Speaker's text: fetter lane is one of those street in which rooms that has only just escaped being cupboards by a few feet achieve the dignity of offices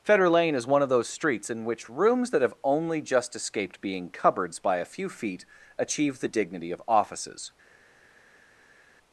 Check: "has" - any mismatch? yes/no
yes